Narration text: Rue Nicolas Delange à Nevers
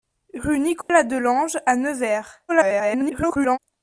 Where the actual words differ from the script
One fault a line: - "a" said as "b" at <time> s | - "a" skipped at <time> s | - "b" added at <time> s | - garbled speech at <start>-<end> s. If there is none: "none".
- garbled speech at 2.5-3.6 s